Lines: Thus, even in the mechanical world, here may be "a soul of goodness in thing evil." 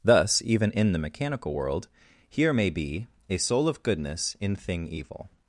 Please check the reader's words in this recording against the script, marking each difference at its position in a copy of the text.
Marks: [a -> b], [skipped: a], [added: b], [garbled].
Thus, even in the mechanical world, here may be "a soul of goodness in thing evil."